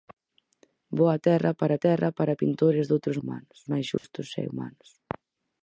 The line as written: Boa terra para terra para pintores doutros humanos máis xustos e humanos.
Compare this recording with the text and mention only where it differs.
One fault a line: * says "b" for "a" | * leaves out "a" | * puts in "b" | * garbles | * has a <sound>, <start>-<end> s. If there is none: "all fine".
* has a dropout, 4.0-4.0 s